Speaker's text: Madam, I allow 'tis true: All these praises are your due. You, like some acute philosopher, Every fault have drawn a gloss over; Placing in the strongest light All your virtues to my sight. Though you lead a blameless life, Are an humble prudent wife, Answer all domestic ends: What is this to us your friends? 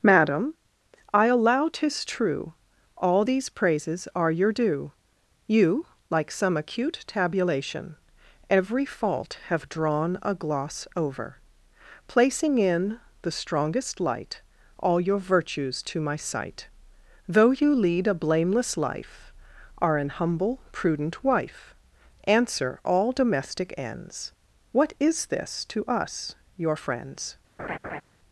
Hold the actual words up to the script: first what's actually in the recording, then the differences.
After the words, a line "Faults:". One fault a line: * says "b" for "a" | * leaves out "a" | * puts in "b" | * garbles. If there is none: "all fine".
Madam, I allow 'tis true: All these praises are your due. You, like some acute tabulation, Every fault have drawn a gloss over; Placing in the strongest light All your virtues to my sight. Though you lead a blameless life, Are an humble prudent wife, Answer all domestic ends: What is this to us your friends?
Faults:
* says "tabulation" for "philosopher"